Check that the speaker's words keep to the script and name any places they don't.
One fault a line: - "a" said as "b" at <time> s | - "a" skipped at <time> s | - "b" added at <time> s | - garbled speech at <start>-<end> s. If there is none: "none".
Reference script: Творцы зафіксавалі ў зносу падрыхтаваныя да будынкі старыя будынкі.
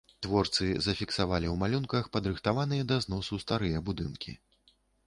- "зносу" said as "малюнках" at 1.6 s
- "будынкі" said as "зносу" at 3.1 s